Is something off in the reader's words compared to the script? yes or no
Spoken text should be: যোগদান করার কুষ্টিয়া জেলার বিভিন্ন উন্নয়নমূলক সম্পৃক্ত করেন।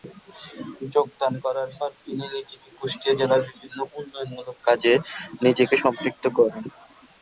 yes